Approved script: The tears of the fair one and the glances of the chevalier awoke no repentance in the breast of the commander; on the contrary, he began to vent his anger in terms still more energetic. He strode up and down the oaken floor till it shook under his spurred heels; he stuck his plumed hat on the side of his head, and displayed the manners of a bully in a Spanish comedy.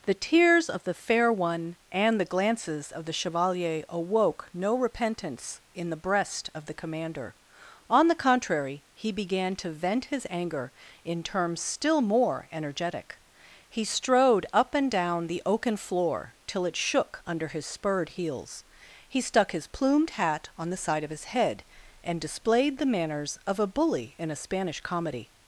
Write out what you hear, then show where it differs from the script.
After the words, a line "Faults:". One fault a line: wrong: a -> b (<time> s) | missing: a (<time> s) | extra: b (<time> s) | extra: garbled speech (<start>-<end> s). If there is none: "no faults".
The tears of the fair one and the glances of the chevalier awoke no repentance in the breast of the commander; on the contrary, he began to vent his anger in terms still more energetic. He strode up and down the oaken floor till it shook under his spurred heels; he stuck his plumed hat on the side of his head, and displayed the manners of a bully in a Spanish comedy.
Faults:
no faults